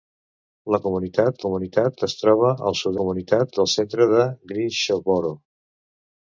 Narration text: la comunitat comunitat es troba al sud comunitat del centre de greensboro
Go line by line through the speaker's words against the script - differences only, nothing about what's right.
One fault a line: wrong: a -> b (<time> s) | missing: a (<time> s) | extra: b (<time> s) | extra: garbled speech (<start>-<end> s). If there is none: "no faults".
no faults